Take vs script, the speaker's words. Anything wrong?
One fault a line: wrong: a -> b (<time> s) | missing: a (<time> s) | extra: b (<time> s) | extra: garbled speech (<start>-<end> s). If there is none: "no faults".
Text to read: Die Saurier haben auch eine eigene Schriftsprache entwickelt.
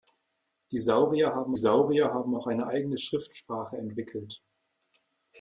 extra: Saurier haben (1.6 s)